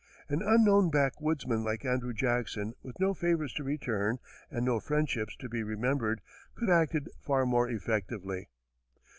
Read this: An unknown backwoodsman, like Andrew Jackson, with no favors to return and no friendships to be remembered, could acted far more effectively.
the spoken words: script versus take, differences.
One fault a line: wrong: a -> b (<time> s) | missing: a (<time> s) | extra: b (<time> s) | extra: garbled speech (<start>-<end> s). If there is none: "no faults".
no faults